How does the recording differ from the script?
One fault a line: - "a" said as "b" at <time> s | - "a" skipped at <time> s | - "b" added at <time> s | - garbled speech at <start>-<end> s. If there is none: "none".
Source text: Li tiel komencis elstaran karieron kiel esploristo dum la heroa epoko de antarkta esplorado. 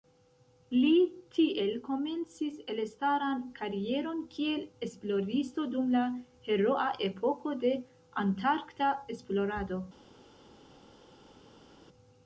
none